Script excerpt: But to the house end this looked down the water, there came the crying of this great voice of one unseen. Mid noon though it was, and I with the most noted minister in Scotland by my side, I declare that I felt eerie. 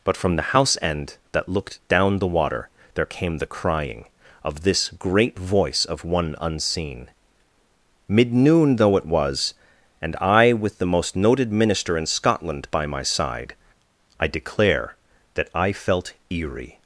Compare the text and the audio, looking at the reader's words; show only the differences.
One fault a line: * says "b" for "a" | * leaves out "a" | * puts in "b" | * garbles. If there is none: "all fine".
* says "from" for "to"
* says "that" for "this"